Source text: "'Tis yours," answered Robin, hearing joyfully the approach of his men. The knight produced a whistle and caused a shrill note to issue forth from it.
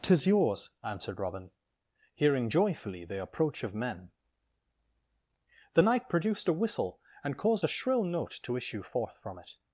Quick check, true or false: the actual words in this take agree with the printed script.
false